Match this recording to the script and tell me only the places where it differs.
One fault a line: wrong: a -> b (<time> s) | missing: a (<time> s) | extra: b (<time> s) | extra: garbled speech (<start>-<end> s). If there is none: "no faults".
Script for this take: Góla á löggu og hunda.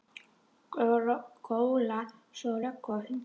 extra: svo (2.4 s)